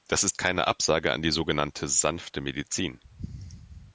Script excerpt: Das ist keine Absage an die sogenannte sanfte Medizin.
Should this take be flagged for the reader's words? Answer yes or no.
no